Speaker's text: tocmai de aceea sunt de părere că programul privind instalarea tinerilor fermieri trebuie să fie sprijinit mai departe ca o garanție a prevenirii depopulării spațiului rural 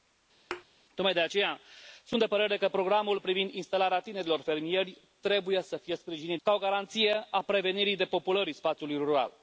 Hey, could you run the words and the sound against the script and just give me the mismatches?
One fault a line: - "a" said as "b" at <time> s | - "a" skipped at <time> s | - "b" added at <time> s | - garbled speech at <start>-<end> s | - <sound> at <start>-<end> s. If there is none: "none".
- thud at 0.5-0.7 s
- "mai departe" skipped at 6.4 s